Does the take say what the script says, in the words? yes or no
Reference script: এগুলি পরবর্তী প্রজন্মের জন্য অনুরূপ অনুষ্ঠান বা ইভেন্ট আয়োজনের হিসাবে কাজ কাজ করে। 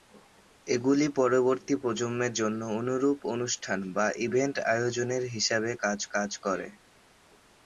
yes